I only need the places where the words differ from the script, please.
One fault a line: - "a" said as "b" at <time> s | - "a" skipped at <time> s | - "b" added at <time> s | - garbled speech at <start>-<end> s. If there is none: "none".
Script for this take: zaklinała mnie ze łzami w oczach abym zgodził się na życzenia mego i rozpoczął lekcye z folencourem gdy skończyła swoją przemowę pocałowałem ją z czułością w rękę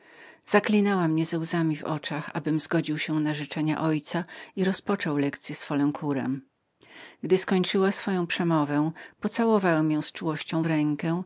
- "ojca" added at 3.9 s